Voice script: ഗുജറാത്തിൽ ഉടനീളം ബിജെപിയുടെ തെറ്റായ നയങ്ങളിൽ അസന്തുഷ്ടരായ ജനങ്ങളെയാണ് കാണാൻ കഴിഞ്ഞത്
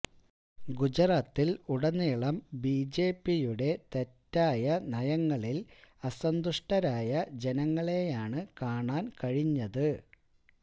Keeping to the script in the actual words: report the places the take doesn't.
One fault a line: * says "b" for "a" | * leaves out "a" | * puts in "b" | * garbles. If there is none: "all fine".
all fine